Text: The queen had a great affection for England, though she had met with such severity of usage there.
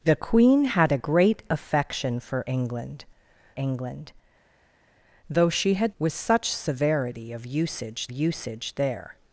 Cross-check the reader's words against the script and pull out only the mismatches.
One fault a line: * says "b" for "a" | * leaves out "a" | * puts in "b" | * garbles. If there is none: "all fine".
* puts in "England"
* leaves out "met"
* puts in "usage"